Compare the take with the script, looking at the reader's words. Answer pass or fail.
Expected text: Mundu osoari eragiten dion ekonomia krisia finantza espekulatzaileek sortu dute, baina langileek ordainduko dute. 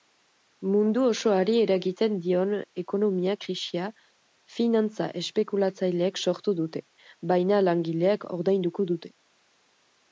pass